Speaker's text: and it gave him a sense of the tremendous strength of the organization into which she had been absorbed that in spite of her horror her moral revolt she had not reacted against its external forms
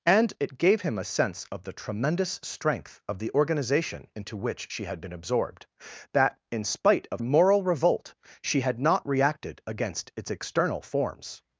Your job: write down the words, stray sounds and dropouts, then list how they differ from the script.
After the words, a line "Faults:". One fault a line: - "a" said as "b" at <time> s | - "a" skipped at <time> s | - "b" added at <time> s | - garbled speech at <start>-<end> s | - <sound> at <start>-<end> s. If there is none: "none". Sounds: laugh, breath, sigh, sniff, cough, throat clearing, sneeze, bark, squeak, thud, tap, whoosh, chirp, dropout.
and it gave him a sense of the tremendous strength of the organization into which she had been absorbed that in spite of moral revolt she had not reacted against its external forms
Faults:
- "her horror her" skipped at 7.2 s